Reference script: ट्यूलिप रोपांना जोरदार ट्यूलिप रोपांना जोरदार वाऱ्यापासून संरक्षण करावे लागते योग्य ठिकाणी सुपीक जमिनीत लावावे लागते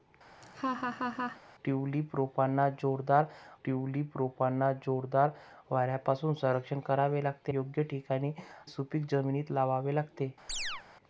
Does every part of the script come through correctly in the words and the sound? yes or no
no